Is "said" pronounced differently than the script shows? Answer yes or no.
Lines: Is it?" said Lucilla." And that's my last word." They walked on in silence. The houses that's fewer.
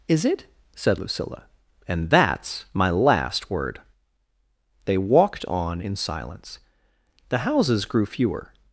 no